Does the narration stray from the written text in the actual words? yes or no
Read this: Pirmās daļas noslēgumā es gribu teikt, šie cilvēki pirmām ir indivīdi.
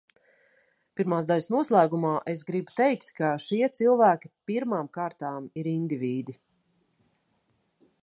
yes